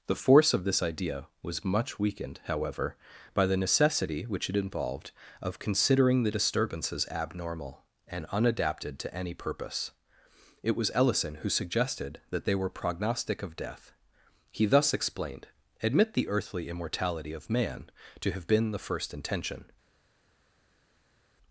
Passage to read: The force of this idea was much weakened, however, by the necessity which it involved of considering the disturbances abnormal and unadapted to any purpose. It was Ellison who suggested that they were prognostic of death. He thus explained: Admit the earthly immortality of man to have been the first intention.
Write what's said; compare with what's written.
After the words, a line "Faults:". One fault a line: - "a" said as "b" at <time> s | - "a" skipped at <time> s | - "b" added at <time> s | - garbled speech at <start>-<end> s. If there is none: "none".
The force of this idea was much weakened, however, by the necessity which it involved of considering the disturbances abnormal and unadapted to any purpose. It was Ellison who suggested that they were prognostic of death. He thus explained: Admit the earthly immortality of man to have been the first intention.
Faults:
none